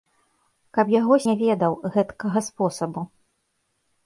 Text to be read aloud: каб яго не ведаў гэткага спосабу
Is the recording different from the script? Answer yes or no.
no